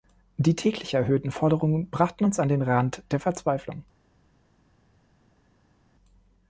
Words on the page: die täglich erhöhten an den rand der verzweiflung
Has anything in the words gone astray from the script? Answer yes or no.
yes